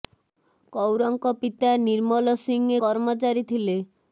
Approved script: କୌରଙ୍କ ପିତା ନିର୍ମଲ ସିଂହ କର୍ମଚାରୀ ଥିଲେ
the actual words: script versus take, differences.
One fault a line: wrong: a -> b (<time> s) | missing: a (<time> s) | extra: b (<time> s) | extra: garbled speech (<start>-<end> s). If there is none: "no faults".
no faults